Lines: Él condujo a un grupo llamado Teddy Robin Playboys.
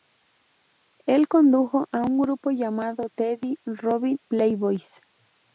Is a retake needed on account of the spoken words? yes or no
no